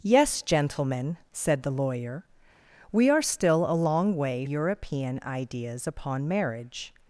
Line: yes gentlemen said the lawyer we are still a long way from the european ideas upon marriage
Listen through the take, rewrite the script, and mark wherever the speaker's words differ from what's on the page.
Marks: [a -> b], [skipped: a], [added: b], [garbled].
yes gentlemen said the lawyer we are still a long way [skipped: from the] european ideas upon marriage